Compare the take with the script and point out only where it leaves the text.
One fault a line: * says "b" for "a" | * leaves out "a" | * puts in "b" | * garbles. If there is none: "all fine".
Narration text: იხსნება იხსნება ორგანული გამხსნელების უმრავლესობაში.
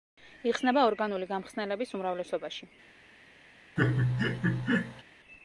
* leaves out "იხსნება"